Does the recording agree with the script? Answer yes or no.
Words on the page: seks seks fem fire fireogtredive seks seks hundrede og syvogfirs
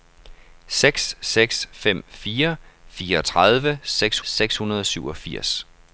yes